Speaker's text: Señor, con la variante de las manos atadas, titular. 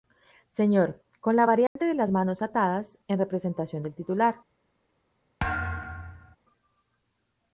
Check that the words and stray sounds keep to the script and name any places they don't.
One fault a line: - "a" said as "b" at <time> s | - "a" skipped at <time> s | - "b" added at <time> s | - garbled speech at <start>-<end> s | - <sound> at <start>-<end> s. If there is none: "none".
- dropout at 1.7-1.8 s
- "en representación del" added at 3.1 s
- thud at 5.4-6.4 s